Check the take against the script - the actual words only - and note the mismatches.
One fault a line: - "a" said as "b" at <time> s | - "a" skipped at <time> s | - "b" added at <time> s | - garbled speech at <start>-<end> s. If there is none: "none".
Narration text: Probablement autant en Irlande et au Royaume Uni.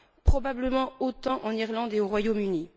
none